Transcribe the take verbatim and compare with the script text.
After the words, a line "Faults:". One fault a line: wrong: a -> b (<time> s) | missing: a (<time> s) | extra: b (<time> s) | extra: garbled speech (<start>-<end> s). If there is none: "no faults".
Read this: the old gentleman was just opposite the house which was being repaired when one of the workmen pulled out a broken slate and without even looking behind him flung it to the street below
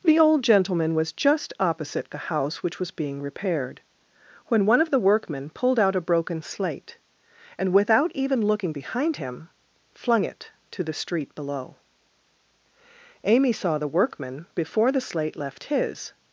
the old gentleman was just opposite the house which was being repaired when one of the workmen pulled out a broken slate and without even looking behind him flung it to the street below amy saw the workman before the slate left his
Faults:
extra: amy saw the workman before the slate left his (13.2 s)